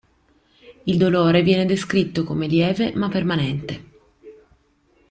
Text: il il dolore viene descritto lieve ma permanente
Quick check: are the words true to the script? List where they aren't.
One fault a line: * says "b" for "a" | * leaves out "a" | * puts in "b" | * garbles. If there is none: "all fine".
* leaves out "il"
* puts in "come"